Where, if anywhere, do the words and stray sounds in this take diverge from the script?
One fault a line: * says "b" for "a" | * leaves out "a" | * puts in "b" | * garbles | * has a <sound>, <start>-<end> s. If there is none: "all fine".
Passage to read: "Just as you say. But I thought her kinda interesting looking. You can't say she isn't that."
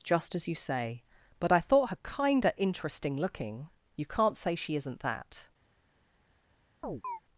* has a chirp, 6.8-7.2 s